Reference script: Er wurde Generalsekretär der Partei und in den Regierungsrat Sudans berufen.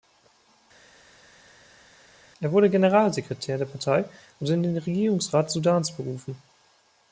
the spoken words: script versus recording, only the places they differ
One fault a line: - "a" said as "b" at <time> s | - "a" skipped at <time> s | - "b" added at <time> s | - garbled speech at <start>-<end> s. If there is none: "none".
none